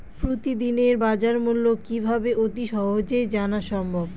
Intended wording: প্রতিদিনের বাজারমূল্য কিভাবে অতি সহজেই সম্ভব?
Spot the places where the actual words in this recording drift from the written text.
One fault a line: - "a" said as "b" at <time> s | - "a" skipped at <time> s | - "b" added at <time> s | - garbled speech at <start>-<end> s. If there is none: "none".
- "জানা" added at 3.3 s